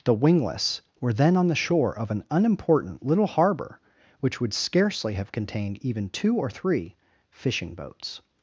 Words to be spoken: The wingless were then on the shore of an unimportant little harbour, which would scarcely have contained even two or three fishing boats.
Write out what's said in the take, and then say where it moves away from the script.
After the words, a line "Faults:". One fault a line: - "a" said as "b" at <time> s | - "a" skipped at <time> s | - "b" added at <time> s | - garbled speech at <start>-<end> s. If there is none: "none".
The wingless were then on the shore of an unimportant little harbour, which would scarcely have contained even two or three fishing boats.
Faults:
none